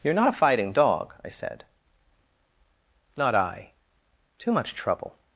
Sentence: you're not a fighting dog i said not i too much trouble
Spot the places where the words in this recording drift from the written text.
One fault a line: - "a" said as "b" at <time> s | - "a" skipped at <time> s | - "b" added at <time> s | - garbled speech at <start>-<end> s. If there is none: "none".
none